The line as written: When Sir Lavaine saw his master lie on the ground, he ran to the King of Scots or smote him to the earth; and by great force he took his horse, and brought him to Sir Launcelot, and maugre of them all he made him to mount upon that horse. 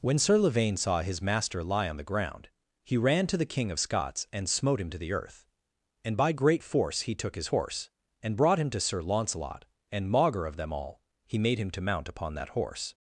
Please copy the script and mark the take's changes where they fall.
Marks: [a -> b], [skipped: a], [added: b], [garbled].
When Sir Lavaine saw his master lie on the ground, he ran to the King of Scots [or -> and] smote him to the earth; and by great force he took his horse, and brought him to Sir Launcelot, and maugre of them all he made him to mount upon that horse.